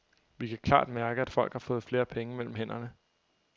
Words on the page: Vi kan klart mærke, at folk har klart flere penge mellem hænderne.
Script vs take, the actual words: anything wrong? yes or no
yes